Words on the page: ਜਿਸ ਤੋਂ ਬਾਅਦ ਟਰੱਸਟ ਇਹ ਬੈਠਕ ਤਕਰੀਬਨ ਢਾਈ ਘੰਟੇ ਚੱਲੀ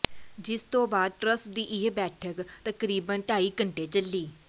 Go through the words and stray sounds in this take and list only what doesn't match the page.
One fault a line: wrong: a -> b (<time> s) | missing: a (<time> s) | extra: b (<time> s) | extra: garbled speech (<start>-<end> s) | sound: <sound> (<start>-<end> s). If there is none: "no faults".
extra: ਦੀ (1.5 s)